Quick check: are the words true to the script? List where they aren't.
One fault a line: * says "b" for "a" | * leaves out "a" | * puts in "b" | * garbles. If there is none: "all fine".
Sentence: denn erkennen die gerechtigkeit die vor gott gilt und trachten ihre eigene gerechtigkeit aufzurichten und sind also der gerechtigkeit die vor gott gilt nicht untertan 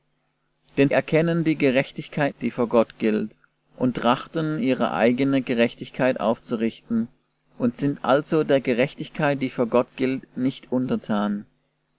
all fine